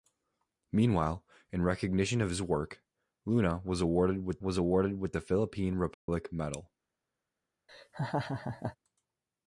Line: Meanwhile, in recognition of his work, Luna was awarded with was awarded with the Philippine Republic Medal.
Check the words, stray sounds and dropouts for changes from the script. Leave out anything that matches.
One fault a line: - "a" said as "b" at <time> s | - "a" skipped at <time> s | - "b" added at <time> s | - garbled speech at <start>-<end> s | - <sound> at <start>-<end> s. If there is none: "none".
- dropout at 5.9-6.1 s
- laugh at 7.7-8.8 s